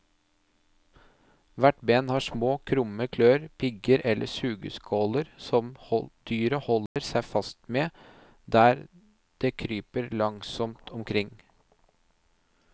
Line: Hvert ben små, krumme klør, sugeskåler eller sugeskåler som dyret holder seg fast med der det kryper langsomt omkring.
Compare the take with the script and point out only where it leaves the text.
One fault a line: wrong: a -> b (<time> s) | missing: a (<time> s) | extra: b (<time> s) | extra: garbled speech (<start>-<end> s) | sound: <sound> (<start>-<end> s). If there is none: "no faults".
extra: har (2.1 s)
wrong: sugeskåler -> pigger (3.6 s)
sound: dropout (6.9-7.0 s)